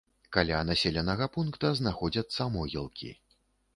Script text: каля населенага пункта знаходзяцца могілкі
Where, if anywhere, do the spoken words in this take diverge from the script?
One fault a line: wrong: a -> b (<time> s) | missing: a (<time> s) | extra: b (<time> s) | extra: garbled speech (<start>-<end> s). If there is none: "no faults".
no faults